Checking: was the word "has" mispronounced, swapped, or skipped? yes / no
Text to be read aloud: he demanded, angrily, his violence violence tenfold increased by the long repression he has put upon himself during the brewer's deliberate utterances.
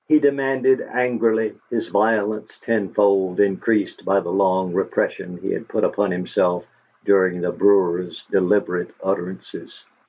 yes